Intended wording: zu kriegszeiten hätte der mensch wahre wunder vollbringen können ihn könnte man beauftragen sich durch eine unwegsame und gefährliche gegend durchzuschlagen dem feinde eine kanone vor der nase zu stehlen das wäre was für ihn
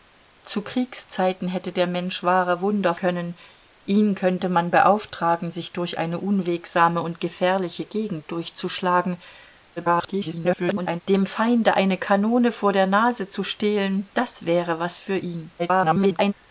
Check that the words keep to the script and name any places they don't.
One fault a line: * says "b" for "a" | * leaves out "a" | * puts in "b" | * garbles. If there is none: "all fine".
* leaves out "vollbringen"
* garbles
* garbles